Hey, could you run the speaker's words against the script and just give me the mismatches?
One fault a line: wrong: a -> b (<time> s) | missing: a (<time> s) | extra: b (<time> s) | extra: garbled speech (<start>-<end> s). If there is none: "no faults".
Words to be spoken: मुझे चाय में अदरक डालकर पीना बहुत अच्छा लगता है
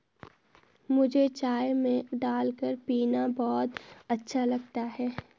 missing: अदरक (2.1 s)